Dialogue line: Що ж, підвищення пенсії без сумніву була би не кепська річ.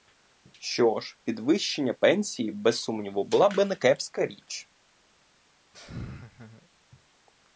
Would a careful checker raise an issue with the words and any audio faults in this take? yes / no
yes